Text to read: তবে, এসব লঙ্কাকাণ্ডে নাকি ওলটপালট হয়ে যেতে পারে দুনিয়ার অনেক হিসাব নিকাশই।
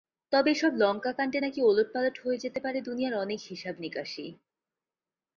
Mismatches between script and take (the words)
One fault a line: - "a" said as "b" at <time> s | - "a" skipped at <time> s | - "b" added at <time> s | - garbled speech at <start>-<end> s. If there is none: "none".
none